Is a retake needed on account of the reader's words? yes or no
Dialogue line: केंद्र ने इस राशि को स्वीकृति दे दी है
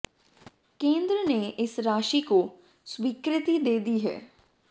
no